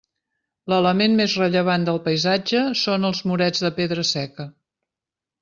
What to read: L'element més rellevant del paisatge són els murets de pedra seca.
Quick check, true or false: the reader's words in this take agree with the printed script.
true